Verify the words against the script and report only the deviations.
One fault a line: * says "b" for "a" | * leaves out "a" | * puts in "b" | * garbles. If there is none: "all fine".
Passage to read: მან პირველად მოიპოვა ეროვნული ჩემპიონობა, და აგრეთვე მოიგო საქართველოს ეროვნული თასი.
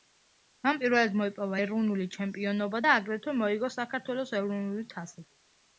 all fine